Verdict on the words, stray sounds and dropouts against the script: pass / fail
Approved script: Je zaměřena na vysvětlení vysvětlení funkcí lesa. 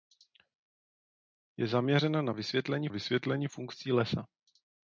pass